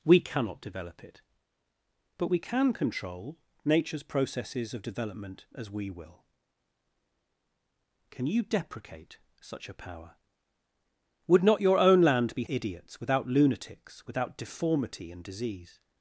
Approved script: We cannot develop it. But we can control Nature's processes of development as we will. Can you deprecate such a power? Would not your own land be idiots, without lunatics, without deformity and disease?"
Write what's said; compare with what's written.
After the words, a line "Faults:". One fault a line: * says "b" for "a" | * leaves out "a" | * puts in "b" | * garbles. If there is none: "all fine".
We cannot develop it. But we can control Nature's processes of development as we will. Can you deprecate such a power? Would not your own land be idiots, without lunatics, without deformity and disease?"
Faults:
all fine